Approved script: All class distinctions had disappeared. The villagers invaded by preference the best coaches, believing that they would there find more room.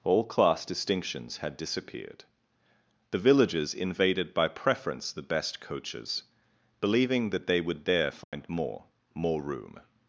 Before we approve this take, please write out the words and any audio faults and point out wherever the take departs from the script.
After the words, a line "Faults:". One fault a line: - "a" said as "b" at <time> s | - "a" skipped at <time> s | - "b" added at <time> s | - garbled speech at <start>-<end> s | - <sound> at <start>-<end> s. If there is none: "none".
All class distinctions had disappeared. The villagers invaded by preference the best coaches, believing that they would there find more more room.
Faults:
- dropout at 8.2-8.3 s
- "more" added at 9.1 s